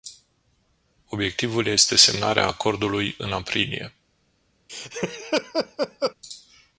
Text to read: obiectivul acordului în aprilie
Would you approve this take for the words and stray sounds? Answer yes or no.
no